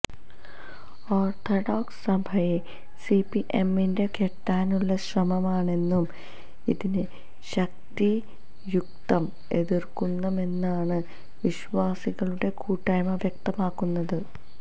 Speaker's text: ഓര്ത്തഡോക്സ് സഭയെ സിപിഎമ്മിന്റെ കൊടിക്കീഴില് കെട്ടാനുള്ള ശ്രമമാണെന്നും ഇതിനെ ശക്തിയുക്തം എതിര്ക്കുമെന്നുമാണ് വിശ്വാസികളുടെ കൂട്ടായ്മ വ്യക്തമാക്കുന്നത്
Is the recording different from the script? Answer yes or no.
yes